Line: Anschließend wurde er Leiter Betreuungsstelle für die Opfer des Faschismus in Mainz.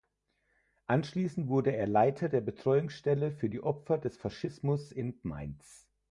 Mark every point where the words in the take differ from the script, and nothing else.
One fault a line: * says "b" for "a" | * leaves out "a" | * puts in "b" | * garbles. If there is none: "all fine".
* puts in "der"